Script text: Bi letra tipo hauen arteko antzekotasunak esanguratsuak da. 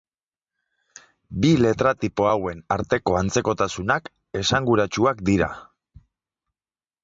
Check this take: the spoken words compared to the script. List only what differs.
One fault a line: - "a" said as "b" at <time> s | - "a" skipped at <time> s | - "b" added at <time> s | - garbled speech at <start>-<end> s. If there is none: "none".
- "da" said as "dira" at 5.3 s